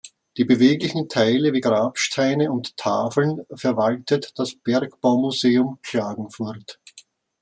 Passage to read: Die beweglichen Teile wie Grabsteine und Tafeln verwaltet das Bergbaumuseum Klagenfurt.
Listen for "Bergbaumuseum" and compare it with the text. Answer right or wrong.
right